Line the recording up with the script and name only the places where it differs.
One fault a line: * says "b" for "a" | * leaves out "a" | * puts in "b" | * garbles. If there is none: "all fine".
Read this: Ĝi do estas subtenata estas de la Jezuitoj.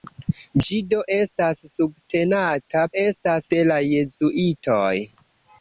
all fine